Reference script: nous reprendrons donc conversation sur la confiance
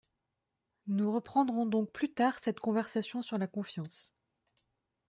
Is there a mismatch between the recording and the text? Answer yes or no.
yes